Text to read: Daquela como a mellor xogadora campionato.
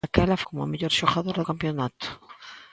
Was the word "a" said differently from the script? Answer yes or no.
no